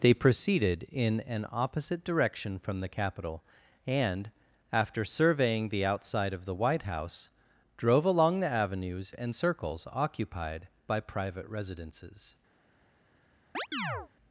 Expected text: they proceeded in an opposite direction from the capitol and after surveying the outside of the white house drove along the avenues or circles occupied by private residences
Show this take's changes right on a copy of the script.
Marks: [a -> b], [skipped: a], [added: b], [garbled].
they proceeded in an opposite direction from the capitol and after surveying the outside of the white house drove along the avenues [or -> and] circles occupied by private residences